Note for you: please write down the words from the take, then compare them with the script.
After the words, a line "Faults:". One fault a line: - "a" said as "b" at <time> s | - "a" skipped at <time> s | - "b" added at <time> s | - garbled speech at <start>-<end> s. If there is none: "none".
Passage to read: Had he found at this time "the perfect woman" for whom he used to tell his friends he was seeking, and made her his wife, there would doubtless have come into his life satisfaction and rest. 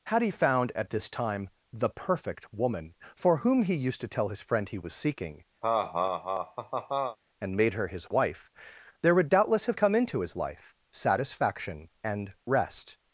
Had he found at this time "the perfect woman" for whom he used to tell his friend he was seeking, and made her his wife, there would doubtless have come into his life satisfaction and rest.
Faults:
- "friends" said as "friend" at 4.4 s